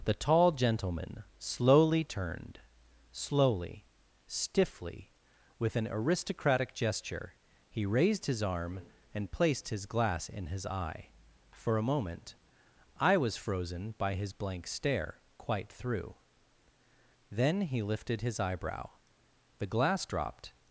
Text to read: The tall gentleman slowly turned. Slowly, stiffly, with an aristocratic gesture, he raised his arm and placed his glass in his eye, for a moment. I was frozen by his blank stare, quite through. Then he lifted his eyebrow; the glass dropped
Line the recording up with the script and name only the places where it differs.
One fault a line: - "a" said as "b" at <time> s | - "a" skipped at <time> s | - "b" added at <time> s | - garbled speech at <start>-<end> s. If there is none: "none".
none